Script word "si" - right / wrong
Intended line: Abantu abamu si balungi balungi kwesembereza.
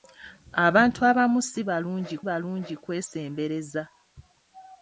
right